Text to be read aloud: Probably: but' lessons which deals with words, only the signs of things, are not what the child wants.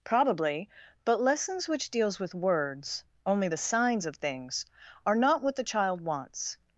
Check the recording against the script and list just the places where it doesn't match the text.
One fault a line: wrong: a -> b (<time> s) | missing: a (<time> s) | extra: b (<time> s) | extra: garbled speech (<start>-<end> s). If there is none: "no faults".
no faults